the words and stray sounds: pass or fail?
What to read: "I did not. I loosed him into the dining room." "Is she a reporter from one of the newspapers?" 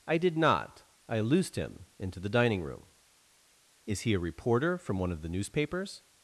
fail